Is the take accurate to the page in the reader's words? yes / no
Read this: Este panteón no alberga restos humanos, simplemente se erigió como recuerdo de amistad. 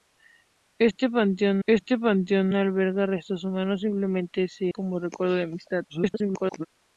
no